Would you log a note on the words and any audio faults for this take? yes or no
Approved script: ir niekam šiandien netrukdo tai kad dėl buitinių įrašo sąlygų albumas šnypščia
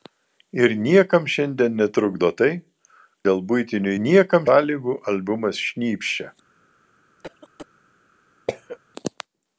yes